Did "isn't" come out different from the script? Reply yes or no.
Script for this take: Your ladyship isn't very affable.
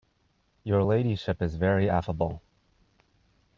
yes